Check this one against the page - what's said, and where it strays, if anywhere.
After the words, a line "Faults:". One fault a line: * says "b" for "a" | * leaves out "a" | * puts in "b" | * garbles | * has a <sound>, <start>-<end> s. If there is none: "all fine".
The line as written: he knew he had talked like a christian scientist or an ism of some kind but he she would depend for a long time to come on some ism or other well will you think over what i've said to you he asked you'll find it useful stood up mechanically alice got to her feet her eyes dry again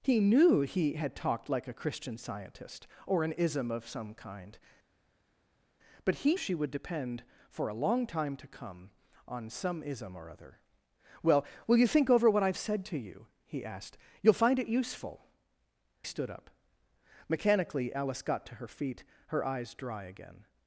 he knew he had talked like a christian scientist or an ism of some kind but he she would depend for a long time to come on some ism or other well will you think over what i've said to you he asked you'll find it useful stood up mechanically alice got to her feet her eyes dry again
Faults:
all fine